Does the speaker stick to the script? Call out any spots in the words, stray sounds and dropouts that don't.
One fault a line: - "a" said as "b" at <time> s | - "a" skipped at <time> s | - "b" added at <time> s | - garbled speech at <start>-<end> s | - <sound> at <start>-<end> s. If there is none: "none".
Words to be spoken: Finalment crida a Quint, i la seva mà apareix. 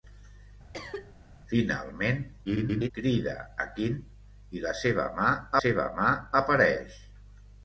- cough at 0.7-1.1 s
- garbled speech at 2.5-2.9 s
- "seva mà" added at 5.6 s